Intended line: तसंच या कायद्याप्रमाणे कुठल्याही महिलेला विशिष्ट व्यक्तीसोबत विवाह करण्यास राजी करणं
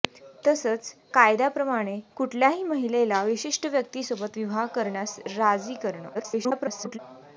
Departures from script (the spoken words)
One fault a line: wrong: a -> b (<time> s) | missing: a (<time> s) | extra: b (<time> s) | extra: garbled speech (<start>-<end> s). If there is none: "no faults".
missing: या (0.9 s)
extra: garbled speech (6.1-7.0 s)